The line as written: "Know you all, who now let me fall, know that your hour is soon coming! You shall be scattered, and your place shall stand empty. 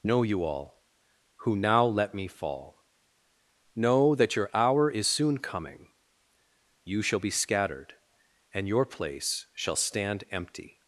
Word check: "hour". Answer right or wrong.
right